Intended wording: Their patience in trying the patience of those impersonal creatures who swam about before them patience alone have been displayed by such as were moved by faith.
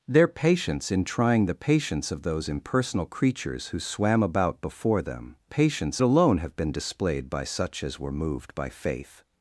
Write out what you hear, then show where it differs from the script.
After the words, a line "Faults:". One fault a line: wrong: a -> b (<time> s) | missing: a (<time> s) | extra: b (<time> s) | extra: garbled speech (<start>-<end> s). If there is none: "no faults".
Their patience in trying the patience of those impersonal creatures who swam about before them patience alone have been displayed by such as were moved by faith.
Faults:
no faults